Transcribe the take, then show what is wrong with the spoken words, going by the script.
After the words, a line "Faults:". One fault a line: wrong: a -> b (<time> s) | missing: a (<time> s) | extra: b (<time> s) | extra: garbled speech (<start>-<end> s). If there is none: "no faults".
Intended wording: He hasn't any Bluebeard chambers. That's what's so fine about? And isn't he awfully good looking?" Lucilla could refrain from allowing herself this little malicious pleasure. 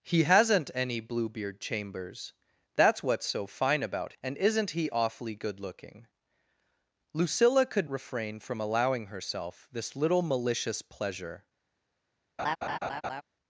He hasn't any Bluebeard chambers. That's what's so fine about? And isn't he awfully good looking?" Lucilla could refrain from allowing herself this little malicious pleasure.
Faults:
no faults